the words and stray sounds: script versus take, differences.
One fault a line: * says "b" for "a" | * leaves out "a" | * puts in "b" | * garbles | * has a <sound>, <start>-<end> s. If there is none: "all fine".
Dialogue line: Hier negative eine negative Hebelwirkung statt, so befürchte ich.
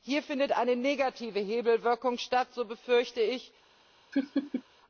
* says "findet" for "negative"
* has a laugh, 4.1-4.6 s